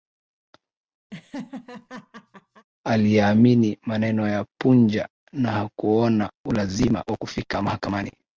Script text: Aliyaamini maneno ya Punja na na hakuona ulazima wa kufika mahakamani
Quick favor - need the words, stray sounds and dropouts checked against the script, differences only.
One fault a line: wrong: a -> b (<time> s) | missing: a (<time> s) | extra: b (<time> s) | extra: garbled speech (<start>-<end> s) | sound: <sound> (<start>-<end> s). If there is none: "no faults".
sound: laugh (1.1-2.7 s)
missing: na (5.5 s)